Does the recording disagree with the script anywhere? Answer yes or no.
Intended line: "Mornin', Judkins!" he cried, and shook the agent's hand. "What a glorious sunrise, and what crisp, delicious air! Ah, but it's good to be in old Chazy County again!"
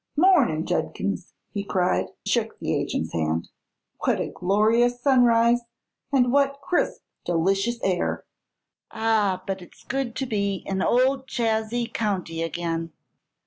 yes